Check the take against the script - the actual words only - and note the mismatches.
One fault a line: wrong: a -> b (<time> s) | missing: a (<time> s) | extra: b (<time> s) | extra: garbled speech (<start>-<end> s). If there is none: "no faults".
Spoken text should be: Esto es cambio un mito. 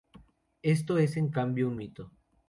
extra: en (1.1 s)